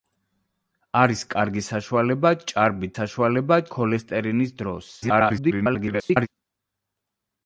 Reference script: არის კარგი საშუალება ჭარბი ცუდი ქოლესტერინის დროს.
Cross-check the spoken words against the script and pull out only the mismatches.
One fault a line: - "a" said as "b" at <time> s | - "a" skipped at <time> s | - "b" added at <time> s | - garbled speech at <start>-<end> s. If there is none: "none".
- "ცუდი" said as "საშუალება" at 2.9 s
- garbled speech at 5.0-6.3 s